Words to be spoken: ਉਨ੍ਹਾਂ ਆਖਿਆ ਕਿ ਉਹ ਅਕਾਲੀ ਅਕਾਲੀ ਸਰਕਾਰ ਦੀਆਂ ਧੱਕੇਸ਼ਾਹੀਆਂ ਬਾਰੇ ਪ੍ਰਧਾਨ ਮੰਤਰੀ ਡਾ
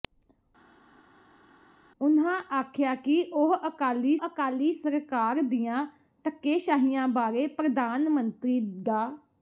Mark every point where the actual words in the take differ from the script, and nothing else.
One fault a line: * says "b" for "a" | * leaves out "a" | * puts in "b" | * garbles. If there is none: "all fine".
all fine